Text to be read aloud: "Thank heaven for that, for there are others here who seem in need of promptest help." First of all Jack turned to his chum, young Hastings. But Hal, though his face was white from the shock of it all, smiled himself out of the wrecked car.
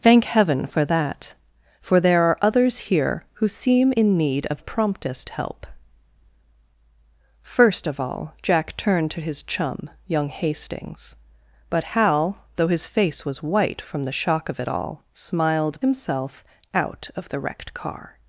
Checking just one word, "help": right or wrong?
right